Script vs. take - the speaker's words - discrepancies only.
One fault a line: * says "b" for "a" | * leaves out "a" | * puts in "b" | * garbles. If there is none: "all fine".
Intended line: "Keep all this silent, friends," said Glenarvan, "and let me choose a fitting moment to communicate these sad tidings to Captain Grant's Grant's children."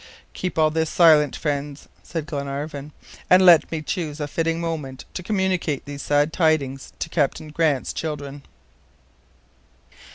* leaves out "Grant's"